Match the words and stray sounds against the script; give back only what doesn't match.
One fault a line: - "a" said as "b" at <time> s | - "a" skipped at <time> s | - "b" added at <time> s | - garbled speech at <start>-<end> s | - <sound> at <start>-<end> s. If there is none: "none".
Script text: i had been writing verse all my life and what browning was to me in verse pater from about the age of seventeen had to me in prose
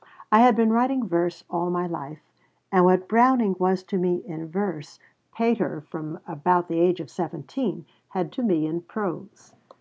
none